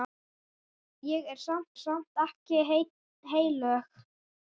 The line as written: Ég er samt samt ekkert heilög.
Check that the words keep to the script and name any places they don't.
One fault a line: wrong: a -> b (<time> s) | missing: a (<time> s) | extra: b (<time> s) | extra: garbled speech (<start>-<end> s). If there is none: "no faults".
no faults